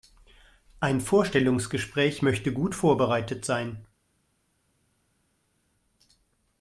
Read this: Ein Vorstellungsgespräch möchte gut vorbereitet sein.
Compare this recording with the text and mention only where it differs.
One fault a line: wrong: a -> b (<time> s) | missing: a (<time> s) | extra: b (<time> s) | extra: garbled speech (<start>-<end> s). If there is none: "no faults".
no faults